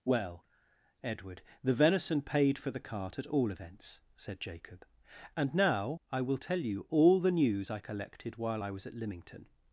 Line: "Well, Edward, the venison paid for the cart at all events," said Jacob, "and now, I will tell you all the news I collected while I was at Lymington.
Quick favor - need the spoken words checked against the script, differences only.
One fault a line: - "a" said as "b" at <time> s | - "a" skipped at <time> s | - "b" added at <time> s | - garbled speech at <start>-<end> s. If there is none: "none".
none